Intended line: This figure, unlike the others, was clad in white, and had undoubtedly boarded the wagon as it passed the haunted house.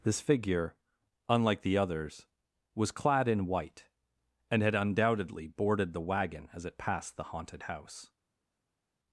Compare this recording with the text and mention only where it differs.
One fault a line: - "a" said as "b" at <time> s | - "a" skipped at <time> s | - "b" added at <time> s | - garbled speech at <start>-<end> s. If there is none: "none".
none